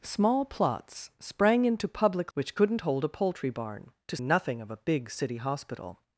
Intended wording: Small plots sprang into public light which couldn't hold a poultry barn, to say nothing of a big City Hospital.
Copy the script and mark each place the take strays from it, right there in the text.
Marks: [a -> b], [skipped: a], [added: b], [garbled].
Small plots sprang into public [skipped: light] which couldn't hold a poultry barn, to [skipped: say] nothing of a big City Hospital.